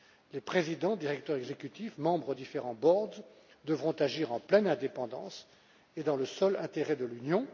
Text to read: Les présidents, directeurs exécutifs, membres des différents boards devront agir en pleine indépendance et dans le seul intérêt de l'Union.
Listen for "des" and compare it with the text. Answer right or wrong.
wrong